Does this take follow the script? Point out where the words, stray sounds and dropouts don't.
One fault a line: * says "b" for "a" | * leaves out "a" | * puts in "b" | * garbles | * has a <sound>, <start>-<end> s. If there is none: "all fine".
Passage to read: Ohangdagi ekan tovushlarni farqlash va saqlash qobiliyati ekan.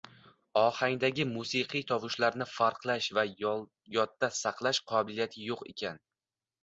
* says "musiqiy" for "ekan"
* puts in "yodda"
* puts in "yo‘q"